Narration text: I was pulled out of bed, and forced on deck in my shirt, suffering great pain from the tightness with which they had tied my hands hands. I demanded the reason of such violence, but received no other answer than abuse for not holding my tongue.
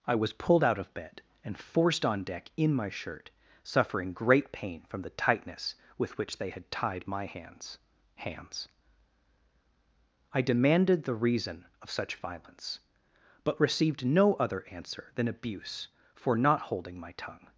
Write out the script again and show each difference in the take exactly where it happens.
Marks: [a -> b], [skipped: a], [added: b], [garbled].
I was pulled out of bed, and forced on deck in my shirt, suffering great pain from the tightness with which they had tied my hands hands. I demanded the reason of such violence, but received no other answer than abuse for not holding my tongue.